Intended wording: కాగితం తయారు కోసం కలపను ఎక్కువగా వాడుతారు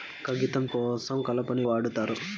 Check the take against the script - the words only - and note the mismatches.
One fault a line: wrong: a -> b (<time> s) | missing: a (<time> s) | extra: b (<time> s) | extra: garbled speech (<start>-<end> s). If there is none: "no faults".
missing: తయారు (0.6 s)
missing: ఎక్కువగా (1.6 s)